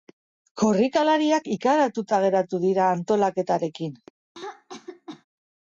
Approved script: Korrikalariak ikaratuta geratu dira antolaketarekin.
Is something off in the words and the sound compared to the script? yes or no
yes